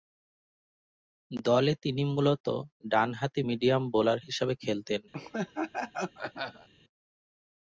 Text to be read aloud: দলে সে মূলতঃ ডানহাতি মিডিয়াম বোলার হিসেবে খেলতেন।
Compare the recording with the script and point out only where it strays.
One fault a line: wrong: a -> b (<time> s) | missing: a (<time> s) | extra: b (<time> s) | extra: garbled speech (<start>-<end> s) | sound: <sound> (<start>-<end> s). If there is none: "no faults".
wrong: সে -> তিনি (1.8 s)
sound: laugh (5.1-6.7 s)